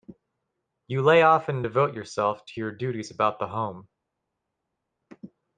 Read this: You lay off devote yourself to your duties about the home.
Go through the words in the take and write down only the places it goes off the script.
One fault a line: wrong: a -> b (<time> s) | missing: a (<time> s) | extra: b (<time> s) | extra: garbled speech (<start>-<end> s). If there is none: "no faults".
extra: and (1.5 s)